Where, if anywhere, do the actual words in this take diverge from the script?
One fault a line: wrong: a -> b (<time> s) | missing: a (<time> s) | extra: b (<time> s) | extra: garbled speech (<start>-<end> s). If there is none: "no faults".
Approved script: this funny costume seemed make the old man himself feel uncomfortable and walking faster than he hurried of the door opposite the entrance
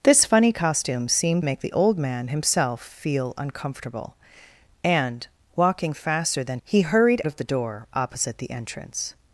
no faults